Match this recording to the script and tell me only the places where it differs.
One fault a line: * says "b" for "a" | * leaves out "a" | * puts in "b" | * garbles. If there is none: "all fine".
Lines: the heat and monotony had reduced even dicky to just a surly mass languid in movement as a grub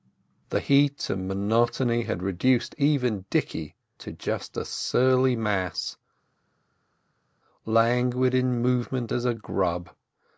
all fine